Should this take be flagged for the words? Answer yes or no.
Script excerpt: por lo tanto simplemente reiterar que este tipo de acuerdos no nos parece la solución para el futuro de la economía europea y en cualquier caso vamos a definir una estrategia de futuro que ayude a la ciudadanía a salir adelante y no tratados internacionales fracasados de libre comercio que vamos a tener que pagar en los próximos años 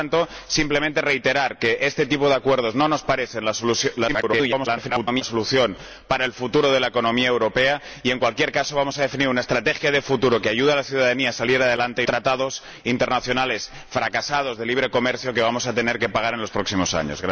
yes